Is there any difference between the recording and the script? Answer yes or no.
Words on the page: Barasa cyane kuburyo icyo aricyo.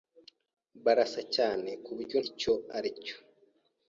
no